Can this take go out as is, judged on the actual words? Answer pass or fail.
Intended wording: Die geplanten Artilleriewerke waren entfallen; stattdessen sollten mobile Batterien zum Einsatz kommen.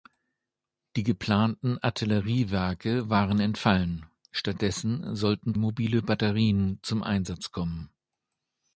pass